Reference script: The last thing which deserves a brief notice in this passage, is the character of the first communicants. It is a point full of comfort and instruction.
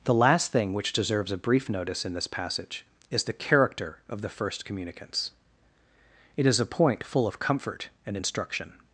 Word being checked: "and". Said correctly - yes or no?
yes